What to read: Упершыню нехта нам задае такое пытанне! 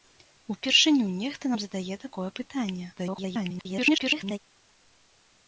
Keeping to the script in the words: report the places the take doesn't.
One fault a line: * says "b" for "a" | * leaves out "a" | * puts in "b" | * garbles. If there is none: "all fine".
* garbles